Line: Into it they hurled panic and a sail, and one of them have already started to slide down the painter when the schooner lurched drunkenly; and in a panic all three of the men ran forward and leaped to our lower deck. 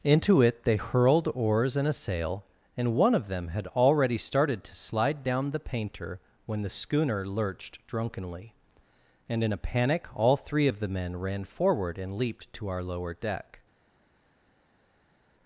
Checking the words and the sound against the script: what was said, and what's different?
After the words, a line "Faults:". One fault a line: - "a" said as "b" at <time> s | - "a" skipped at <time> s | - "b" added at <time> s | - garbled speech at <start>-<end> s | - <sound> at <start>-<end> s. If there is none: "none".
Into it they hurled oars and a sail, and one of them had already started to slide down the painter when the schooner lurched drunkenly; and in a panic all three of the men ran forward and leaped to our lower deck.
Faults:
- "panic" said as "oars" at 1.3 s
- "have" said as "had" at 3.5 s